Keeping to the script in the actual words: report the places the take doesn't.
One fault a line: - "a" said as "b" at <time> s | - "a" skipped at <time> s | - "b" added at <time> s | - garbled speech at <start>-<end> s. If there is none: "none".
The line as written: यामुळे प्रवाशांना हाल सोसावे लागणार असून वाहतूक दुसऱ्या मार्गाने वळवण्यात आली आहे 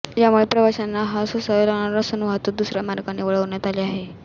none